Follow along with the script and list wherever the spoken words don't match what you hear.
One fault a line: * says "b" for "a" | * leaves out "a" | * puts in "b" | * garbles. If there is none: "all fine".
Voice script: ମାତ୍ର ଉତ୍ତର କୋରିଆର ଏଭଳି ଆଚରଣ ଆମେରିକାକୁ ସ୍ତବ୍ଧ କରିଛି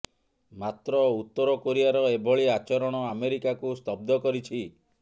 all fine